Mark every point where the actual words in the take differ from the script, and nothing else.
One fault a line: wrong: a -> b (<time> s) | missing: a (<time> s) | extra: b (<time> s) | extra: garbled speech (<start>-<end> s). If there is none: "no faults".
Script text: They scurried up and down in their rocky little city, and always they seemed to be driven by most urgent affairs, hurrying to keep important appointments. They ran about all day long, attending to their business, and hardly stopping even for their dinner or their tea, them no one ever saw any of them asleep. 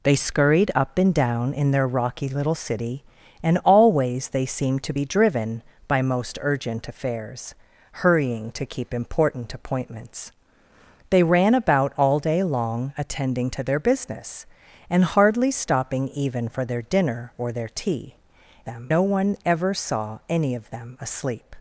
no faults